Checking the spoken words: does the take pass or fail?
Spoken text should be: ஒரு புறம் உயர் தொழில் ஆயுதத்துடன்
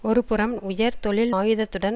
pass